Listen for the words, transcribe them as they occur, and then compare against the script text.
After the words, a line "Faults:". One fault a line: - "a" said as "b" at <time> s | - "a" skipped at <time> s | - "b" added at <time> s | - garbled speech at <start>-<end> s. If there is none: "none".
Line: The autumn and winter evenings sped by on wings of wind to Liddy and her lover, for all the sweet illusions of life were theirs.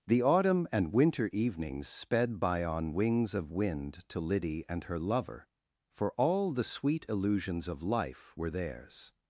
The autumn and winter evenings sped by on wings of wind to Liddy and her lover, for all the sweet illusions of life were theirs.
Faults:
none